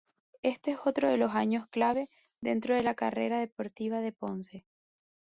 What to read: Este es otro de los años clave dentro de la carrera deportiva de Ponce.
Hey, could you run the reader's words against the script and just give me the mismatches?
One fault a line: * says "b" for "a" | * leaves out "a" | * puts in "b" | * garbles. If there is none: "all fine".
all fine